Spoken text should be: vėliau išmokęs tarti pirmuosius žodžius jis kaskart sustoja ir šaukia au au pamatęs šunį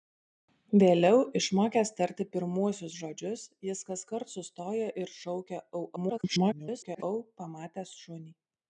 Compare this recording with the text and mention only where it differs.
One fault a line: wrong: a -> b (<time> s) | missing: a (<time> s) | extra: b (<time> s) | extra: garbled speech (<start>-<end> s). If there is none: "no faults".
extra: garbled speech (6.0-7.0 s)